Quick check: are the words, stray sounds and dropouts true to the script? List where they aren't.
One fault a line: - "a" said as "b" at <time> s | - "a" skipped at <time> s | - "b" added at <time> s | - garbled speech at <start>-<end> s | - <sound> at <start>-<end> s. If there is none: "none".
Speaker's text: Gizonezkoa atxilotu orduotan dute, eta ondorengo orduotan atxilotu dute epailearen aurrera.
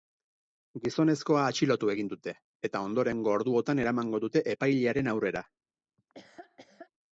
- "orduotan" said as "egin" at 1.9 s
- "atxilotu" said as "eramango" at 3.9 s
- laugh at 6.0-6.9 s